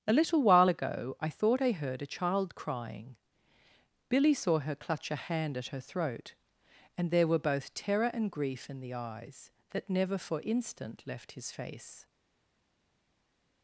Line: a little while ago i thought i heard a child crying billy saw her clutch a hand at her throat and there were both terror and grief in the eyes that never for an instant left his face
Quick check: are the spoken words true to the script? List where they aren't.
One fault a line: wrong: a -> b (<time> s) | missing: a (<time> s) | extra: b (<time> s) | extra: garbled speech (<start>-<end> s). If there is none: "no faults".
missing: an (10.4 s)